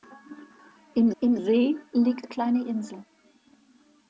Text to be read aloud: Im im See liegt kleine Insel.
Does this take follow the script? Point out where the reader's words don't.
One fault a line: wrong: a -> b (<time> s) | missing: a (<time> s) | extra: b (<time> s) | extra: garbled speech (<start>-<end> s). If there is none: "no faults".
no faults